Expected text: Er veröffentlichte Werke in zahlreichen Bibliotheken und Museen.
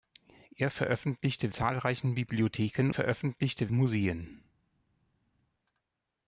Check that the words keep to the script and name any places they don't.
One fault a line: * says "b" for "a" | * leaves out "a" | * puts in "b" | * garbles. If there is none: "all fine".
* leaves out "Werke in"
* says "veröffentlichte" for "und"